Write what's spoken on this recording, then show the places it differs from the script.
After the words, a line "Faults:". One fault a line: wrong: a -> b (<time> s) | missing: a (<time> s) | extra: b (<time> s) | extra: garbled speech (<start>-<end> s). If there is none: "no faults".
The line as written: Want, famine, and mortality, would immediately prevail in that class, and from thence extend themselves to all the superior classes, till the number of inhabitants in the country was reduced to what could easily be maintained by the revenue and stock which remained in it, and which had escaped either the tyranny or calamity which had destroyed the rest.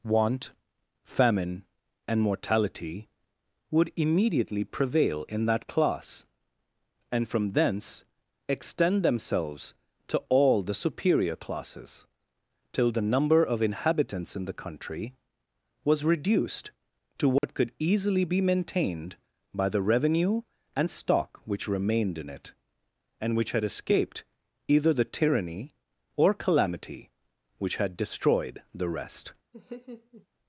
Want, famine, and mortality, would immediately prevail in that class, and from thence extend themselves to all the superior classes, till the number of inhabitants in the country was reduced to what could easily be maintained by the revenue and stock which remained in it, and which had escaped either the tyranny or calamity which had destroyed the rest.
Faults:
no faults